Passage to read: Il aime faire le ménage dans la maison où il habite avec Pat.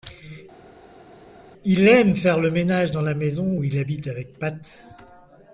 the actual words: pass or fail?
pass